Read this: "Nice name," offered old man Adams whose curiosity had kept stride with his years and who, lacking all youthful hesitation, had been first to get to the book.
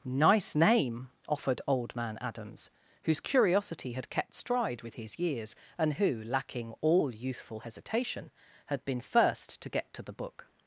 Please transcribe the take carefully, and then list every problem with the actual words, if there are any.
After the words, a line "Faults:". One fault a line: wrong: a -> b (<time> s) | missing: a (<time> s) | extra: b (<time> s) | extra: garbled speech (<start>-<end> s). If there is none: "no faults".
"Nice name," offered old man Adams whose curiosity had kept stride with his years and who, lacking all youthful hesitation, had been first to get to the book.
Faults:
no faults